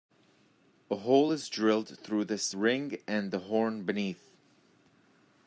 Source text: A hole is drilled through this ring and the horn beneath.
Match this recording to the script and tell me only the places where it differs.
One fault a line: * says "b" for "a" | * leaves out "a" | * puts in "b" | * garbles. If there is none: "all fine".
all fine